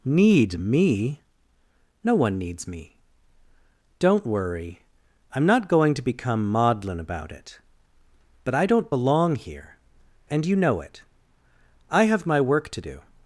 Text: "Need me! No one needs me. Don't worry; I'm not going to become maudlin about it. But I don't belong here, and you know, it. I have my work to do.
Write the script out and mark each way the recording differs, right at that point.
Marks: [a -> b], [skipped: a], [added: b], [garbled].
"Need me! No one needs me. Don't worry; I'm not going to become maudlin about it. But I don't belong here, and you know, it. I have my work to do.